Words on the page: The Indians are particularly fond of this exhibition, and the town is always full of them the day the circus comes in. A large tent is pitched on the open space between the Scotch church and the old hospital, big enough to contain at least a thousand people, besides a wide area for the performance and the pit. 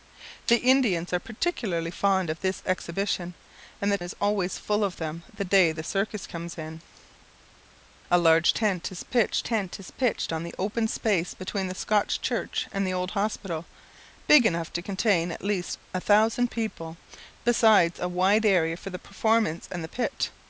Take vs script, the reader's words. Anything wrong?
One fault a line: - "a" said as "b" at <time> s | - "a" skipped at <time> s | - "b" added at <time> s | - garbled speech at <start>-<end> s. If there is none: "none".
- "town" skipped at 4.0 s
- "tent is pitched" added at 9.4 s